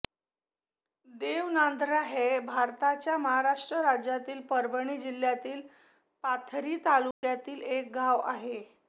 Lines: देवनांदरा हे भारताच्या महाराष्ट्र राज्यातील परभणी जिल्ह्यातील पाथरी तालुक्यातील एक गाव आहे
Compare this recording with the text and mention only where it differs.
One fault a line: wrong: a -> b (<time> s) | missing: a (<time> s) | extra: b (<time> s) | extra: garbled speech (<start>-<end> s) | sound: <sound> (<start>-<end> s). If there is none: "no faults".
sound: dropout (7.1-7.2 s)